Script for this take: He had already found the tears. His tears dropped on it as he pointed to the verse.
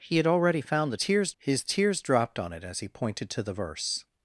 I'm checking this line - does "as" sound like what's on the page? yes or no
yes